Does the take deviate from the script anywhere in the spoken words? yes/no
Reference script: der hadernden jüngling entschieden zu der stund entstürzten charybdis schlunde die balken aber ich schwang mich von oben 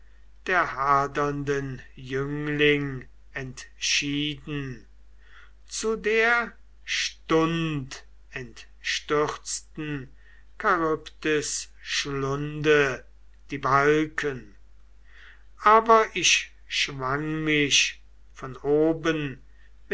no